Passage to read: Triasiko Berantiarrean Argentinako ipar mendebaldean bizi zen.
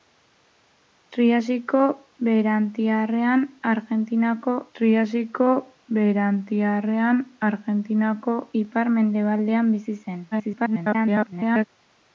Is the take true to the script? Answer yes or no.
no